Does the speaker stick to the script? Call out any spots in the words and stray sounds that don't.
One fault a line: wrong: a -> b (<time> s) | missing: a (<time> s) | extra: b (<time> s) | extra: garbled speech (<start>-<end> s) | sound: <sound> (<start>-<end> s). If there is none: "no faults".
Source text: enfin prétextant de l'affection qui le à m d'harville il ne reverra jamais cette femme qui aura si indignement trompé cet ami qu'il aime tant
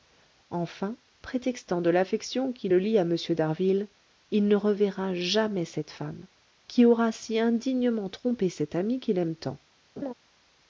extra: lie (2.8 s)
sound: laugh (10.0-10.1 s)